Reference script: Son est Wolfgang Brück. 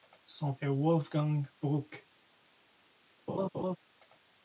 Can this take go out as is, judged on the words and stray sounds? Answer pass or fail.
fail